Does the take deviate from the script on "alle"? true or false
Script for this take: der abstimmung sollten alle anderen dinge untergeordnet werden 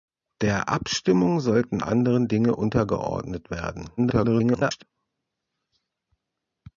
true